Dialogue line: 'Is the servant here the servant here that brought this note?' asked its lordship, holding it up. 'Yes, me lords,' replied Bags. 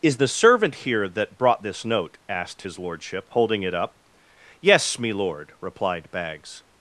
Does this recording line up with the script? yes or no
no